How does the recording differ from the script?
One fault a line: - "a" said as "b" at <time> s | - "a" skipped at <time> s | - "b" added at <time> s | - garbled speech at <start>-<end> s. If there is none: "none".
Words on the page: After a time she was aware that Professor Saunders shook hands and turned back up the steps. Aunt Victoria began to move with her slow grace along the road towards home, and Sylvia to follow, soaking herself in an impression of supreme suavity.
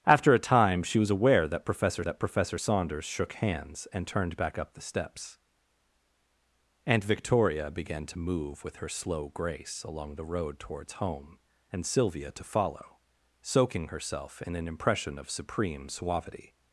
- "that Professor" added at 2.0 s